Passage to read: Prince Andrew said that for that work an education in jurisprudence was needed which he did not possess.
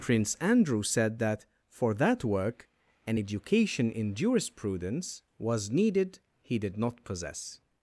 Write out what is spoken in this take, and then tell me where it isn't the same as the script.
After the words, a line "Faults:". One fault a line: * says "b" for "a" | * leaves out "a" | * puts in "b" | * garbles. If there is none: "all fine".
Prince Andrew said that for that work an education in jurisprudence was needed he did not possess.
Faults:
* leaves out "which"